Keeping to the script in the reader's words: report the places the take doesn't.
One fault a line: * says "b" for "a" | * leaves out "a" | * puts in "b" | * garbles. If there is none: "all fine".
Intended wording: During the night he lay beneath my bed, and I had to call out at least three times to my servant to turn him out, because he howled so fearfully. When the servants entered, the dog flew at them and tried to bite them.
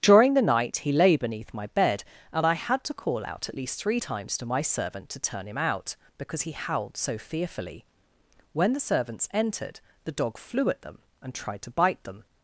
all fine